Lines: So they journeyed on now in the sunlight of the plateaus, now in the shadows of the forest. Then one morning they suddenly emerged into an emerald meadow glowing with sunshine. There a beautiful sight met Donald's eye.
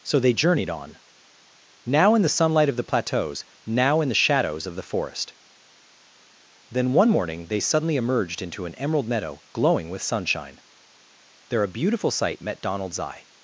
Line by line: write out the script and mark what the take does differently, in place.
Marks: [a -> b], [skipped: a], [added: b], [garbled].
So they journeyed on now in the sunlight of the plateaus, now in the shadows of the forest. Then one morning they suddenly emerged into an emerald meadow glowing with sunshine. There a beautiful sight met Donald's eye.